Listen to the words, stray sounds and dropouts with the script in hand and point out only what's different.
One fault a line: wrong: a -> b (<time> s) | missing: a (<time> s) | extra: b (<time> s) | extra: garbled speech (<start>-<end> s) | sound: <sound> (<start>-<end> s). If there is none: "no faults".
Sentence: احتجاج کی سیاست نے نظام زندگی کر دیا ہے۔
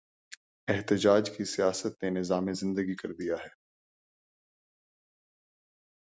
no faults